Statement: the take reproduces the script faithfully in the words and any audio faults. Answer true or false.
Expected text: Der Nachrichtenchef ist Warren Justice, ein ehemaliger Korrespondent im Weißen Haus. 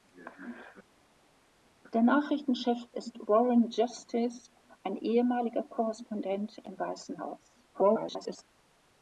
false